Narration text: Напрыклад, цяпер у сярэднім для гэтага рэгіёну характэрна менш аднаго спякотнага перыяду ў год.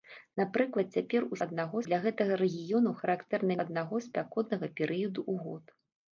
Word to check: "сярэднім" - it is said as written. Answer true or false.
false